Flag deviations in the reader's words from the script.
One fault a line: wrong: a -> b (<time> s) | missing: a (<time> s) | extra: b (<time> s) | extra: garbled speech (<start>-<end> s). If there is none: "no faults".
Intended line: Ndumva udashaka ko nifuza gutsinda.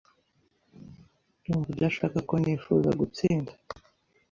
no faults